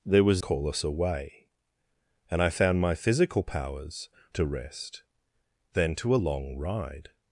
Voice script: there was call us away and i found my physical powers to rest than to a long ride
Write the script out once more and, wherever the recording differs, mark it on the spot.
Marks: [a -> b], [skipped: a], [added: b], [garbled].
there was call us away and i found my physical powers to rest than to a long ride